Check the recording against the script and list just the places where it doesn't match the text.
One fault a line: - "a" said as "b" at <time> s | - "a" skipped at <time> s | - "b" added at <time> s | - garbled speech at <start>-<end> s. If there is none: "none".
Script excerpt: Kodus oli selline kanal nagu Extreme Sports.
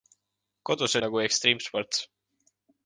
- "oli selline kanal" skipped at 0.9 s